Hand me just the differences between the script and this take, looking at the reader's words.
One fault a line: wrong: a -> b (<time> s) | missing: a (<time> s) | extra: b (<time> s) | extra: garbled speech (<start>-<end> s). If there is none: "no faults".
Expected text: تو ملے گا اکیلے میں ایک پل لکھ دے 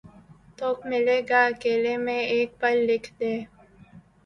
no faults